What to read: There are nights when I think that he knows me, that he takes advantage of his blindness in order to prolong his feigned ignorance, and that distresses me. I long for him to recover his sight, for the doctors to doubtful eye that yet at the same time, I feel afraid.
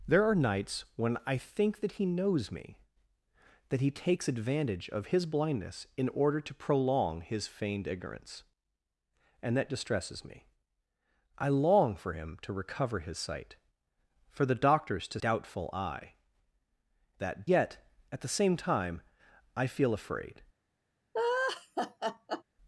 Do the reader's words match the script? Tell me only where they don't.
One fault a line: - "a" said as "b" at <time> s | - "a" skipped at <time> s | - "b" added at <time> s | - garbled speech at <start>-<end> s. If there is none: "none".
none